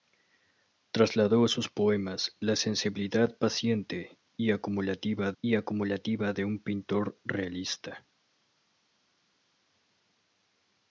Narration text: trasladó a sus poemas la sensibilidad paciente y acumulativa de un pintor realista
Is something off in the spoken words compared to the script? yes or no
yes